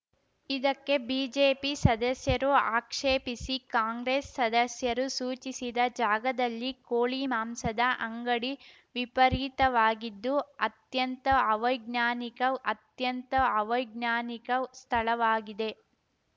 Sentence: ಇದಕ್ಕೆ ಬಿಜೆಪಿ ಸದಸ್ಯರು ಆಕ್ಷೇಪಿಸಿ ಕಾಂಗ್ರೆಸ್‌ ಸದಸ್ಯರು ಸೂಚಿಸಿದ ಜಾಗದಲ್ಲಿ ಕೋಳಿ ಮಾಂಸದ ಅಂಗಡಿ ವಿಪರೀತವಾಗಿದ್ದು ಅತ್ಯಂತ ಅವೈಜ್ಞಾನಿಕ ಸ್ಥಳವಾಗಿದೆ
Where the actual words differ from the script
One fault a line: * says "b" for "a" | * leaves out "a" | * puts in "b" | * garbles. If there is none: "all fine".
* puts in "ಅತ್ಯಂತ ಅವೈಜ್ಞಾನಿಕ"